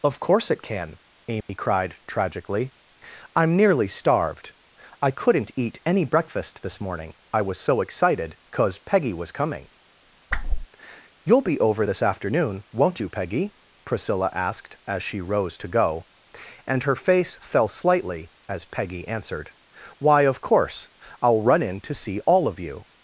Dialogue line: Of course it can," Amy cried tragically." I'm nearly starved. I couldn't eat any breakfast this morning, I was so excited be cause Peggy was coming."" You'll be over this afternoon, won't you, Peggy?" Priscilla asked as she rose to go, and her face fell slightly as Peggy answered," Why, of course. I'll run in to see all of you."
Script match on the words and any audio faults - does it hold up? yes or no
no